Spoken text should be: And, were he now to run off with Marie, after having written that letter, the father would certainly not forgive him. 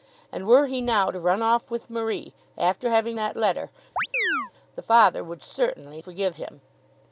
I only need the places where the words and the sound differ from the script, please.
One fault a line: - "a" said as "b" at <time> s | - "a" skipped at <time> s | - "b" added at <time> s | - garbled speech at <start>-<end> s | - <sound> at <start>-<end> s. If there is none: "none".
- "written" skipped at 3.2 s
- chirp at 4.0-4.5 s
- "not" skipped at 6.0 s